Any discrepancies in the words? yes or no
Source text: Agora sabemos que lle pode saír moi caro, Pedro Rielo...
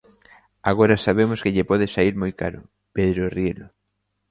no